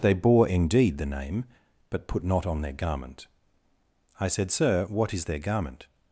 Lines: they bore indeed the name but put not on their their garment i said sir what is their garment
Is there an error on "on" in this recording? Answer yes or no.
no